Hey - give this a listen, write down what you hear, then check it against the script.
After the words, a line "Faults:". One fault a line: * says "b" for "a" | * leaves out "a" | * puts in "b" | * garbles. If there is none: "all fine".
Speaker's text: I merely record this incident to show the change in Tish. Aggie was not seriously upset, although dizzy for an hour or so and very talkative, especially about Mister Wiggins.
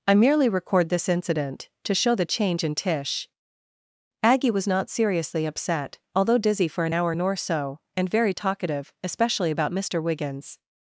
I merely record this incident to show the change in Tish. Aggie was not seriously upset, although dizzy for an hour nor so and very talkative, especially about Mister Wiggins.
Faults:
* says "nor" for "or"